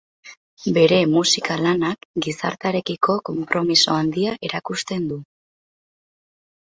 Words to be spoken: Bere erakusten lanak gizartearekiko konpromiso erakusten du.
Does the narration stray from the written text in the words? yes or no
yes